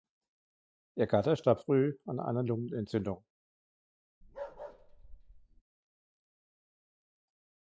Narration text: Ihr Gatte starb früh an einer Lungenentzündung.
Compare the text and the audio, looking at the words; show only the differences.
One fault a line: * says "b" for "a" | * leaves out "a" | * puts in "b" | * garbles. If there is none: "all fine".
all fine